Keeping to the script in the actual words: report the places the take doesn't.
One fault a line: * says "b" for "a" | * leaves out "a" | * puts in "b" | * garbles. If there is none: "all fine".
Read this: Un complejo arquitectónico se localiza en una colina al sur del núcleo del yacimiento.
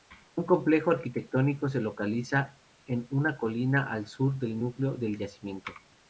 all fine